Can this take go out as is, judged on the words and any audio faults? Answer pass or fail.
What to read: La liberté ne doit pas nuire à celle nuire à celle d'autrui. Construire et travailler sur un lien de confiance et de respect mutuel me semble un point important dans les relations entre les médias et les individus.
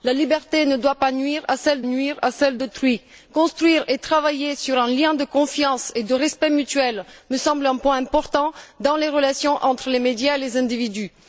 pass